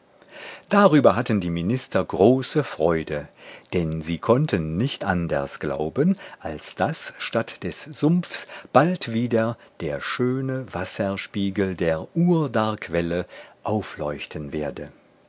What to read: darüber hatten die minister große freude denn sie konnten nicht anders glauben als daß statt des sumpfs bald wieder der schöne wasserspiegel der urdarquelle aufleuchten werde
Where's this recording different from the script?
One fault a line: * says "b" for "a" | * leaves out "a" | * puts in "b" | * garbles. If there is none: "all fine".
all fine